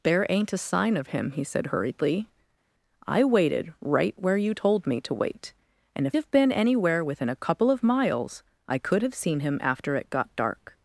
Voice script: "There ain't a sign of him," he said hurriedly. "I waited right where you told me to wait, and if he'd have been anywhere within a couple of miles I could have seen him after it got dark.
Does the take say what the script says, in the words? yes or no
no